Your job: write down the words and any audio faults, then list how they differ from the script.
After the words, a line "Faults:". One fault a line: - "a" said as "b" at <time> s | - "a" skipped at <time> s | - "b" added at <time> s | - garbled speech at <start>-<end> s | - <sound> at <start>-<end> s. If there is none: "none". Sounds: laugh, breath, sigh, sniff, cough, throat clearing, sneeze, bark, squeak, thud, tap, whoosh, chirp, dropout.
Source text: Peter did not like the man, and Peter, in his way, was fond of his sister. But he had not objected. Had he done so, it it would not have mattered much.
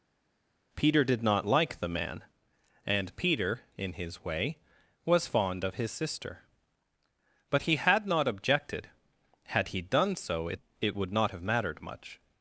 Peter did not like the man, and Peter, in his way, was fond of his sister. But he had not objected. Had he done so, it it would not have mattered much.
Faults:
none